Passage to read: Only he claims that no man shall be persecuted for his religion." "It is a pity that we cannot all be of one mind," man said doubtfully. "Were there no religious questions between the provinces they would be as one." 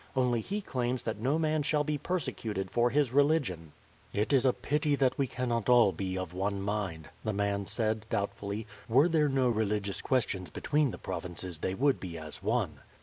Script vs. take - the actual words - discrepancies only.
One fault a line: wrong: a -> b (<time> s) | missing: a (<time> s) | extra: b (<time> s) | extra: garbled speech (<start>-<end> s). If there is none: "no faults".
extra: the (7.2 s)